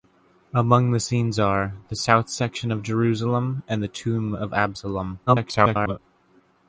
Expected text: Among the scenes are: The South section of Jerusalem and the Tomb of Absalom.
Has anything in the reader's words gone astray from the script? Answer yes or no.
yes